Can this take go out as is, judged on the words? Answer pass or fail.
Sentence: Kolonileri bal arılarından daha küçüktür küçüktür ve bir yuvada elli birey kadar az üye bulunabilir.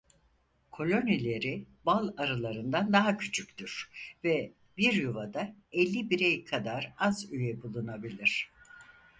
fail